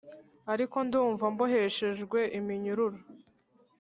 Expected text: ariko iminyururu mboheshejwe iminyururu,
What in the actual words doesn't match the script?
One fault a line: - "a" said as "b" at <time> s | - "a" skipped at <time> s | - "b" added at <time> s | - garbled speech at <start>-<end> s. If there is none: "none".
- "iminyururu" said as "ndumva" at 0.9 s